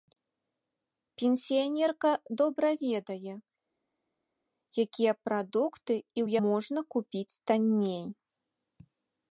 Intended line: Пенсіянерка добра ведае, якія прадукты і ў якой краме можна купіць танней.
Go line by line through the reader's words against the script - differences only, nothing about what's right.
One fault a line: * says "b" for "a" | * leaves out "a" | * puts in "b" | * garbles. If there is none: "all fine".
* leaves out "якой краме"